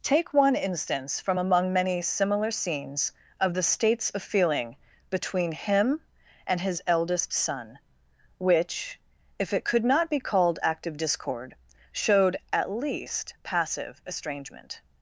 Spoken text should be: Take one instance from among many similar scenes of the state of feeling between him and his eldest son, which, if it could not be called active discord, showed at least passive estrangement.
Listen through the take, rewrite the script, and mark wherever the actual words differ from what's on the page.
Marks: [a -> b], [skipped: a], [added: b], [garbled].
Take one instance from among many similar scenes of the [state -> states] of feeling between him and his eldest son, which, if it could not be called active discord, showed at least passive estrangement.